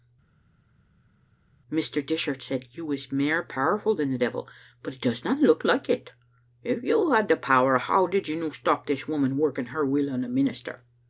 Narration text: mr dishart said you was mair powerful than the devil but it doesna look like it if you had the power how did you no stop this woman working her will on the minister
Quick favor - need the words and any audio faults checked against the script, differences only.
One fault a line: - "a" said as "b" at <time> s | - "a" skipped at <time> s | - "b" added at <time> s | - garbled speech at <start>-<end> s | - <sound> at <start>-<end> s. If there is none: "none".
none